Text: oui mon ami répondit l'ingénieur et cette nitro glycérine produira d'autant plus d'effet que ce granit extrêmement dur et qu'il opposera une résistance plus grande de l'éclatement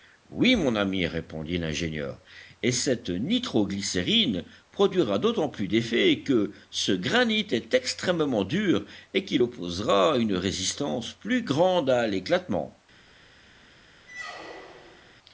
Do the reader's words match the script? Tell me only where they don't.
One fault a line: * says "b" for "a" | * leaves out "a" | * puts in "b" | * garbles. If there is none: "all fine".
* puts in "est"
* says "à" for "de"